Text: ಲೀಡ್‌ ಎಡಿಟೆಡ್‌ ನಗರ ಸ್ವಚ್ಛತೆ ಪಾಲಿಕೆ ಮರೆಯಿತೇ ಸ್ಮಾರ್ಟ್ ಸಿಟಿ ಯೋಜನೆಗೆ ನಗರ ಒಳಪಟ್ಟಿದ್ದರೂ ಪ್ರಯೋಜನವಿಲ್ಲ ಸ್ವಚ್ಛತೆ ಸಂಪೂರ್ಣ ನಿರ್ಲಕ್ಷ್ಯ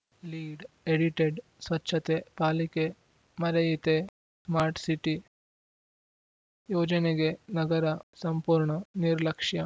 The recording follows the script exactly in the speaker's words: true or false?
false